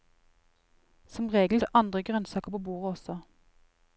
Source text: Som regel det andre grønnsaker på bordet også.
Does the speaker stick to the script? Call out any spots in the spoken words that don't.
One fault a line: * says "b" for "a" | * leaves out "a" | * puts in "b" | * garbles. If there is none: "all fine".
all fine